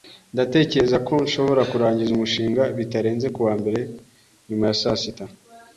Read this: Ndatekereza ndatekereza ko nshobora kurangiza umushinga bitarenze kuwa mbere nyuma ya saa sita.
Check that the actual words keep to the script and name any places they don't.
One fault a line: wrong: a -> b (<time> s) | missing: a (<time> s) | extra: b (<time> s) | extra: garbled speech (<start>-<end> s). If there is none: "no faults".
missing: ndatekereza (1.0 s)